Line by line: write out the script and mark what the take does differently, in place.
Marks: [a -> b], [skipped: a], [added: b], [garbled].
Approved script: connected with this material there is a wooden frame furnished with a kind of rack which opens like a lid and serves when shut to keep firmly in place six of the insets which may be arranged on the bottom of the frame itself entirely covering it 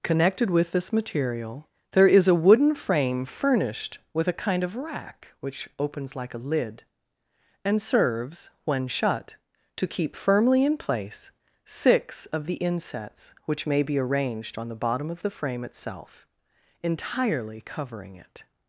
connected with this material there is a wooden frame furnished with a kind of rack which opens like a lid and serves when shut to keep firmly in place six of the insets which may be arranged on the bottom of the frame itself entirely covering it